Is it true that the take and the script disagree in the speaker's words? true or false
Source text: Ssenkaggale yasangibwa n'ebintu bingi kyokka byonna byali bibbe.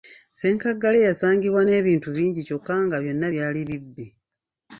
true